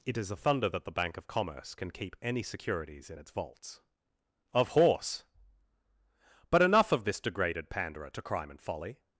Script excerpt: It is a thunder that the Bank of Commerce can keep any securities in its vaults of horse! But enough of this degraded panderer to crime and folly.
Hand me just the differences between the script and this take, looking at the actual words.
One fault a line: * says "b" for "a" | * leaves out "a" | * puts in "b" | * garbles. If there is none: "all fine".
all fine